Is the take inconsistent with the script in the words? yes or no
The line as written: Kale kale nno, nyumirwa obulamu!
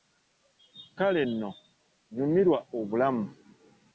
yes